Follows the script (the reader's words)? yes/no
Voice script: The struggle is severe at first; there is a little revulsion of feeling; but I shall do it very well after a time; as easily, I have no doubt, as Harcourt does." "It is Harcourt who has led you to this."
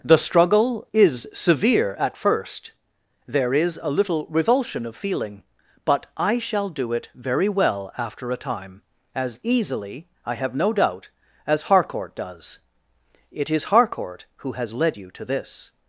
yes